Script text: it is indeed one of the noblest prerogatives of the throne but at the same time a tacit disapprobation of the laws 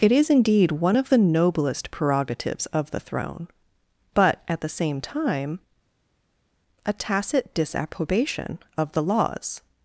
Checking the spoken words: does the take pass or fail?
pass